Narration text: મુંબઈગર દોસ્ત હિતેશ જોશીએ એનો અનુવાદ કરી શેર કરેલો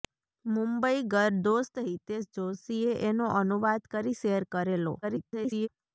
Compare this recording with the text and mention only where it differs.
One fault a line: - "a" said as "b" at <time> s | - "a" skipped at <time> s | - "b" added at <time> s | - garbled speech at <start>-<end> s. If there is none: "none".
- garbled speech at 5.0-5.7 s